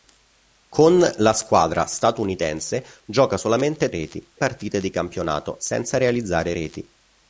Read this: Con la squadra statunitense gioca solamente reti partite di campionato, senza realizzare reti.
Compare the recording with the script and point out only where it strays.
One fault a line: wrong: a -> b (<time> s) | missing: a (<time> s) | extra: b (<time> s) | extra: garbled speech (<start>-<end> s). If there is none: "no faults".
no faults